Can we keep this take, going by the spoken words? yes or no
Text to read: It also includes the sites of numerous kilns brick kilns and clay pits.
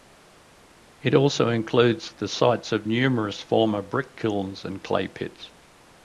no